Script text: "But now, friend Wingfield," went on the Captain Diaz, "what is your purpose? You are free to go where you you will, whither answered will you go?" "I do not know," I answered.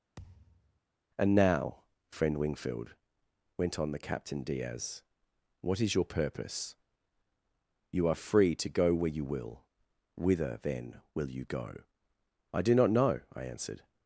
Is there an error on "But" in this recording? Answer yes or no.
yes